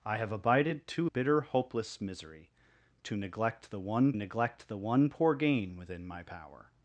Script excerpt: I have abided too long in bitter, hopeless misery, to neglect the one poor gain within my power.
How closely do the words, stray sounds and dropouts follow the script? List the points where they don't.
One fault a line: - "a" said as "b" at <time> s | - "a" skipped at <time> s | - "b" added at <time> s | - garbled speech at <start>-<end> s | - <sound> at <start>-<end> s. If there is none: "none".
- "long in" skipped at 1.1 s
- "neglect the one" added at 4.1 s